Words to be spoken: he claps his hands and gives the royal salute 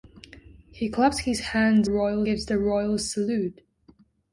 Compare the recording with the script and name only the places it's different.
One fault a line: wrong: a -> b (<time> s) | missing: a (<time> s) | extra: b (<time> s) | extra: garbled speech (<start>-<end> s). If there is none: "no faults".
wrong: and -> royal (1.8 s)